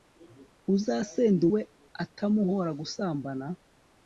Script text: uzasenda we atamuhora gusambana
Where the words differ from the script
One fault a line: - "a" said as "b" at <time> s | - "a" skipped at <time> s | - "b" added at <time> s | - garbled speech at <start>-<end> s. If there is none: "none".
none